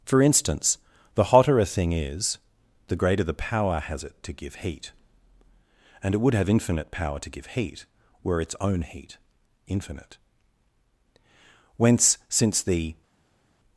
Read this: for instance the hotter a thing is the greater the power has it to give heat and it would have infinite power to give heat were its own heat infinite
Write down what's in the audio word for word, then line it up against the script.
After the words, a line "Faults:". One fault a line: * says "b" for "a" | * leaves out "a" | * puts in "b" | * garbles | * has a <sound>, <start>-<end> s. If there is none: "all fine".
for instance the hotter a thing is the greater the power has it to give heat and it would have infinite power to give heat were its own heat infinite whence since the
Faults:
* puts in "whence since the"